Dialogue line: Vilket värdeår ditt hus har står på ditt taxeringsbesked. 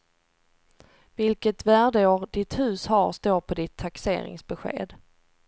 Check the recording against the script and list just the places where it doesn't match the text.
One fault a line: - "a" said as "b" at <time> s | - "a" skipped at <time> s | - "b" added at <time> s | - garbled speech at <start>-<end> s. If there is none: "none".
none